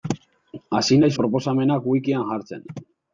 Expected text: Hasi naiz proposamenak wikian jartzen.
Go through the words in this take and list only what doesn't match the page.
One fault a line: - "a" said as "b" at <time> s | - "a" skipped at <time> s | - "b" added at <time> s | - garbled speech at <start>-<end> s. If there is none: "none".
none